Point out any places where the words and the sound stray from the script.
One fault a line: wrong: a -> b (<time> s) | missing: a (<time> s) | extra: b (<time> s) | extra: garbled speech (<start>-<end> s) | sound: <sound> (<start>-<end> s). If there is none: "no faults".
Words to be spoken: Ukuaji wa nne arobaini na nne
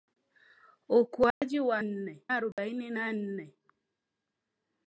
sound: dropout (1.3-1.4 s)
sound: dropout (2.5-2.6 s)